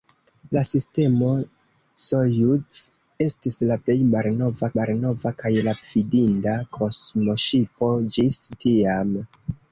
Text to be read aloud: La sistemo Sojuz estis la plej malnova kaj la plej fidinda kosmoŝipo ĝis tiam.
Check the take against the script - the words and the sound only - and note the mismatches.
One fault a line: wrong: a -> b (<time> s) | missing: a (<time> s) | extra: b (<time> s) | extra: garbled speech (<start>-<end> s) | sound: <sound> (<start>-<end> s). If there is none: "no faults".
extra: malnova (4.8 s)
missing: plej (5.8 s)